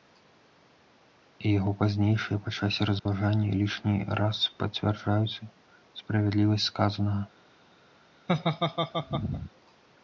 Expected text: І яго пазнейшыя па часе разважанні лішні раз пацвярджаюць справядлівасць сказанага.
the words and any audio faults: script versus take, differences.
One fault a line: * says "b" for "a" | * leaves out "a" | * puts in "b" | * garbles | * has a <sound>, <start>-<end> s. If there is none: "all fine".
* has a dropout, 3.0-3.1 s
* has a laugh, 8.3-9.5 s